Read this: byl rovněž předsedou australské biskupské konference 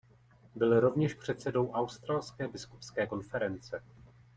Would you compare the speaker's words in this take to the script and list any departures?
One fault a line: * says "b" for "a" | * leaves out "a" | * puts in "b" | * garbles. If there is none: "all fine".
all fine